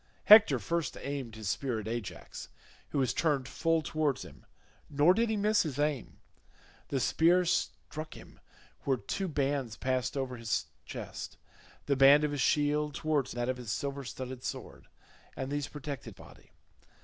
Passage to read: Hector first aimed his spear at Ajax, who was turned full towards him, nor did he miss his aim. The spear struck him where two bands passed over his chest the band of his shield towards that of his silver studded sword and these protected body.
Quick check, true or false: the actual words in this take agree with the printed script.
true